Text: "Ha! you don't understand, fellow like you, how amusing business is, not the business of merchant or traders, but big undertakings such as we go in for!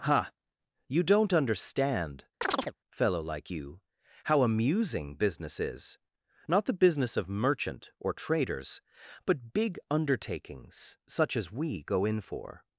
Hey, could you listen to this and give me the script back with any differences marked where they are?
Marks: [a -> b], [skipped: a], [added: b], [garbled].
"Ha! you don't understand, fellow like you, how amusing business is, not the business of merchant or traders, but big undertakings such as we go in for!